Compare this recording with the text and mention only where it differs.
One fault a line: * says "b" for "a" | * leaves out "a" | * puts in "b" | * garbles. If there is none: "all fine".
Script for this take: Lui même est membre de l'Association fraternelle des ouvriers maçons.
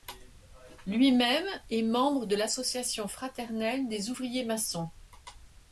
all fine